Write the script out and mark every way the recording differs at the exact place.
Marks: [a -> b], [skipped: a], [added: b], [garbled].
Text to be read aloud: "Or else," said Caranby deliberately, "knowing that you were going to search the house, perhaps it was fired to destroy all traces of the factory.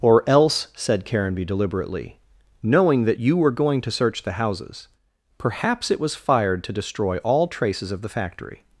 "Or else," said Caranby deliberately, "knowing that you were going to search the [house, -> houses] perhaps it was fired to destroy all traces of the factory.